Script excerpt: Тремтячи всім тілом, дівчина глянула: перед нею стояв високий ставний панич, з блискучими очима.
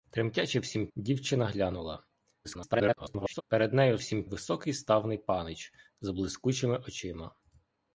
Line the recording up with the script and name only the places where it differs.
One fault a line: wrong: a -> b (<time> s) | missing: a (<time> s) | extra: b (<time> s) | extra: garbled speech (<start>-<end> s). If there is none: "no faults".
missing: тілом (0.9 s)
extra: garbled speech (2.4-3.4 s)
wrong: стояв -> всім (4.0 s)